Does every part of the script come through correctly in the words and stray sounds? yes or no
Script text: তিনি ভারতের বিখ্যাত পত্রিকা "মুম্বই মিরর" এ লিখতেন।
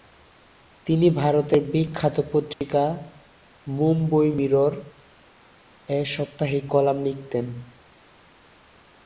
no